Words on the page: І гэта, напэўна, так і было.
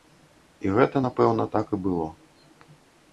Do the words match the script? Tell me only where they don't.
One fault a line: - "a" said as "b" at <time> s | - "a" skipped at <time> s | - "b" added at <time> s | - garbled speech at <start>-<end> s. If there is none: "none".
none